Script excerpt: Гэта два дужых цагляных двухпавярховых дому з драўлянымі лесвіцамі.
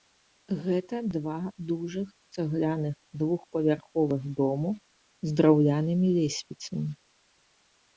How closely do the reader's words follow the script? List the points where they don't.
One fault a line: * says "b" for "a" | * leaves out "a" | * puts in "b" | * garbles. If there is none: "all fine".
all fine